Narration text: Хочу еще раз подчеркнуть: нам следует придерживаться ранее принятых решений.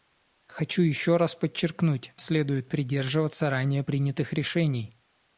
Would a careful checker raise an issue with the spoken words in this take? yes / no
yes